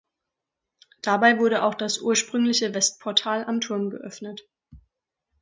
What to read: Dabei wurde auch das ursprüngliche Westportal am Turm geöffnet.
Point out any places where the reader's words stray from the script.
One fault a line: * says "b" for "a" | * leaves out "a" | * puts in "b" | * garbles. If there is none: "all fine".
all fine